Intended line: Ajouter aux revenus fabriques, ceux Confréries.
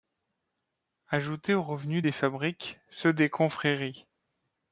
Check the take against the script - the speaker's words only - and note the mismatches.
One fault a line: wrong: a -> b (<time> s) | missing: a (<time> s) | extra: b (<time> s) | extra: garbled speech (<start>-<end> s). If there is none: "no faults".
extra: des (2.0 s)
extra: des (3.1 s)